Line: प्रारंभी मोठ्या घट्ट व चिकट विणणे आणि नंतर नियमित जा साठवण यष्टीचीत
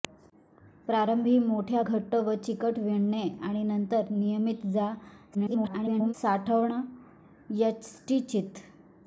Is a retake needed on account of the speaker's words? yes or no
yes